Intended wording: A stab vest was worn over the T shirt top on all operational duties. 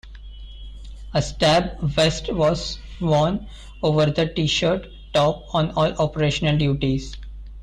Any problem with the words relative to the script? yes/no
no